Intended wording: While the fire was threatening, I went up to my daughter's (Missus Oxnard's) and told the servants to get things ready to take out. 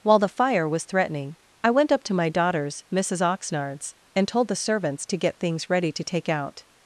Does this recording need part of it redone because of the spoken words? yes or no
no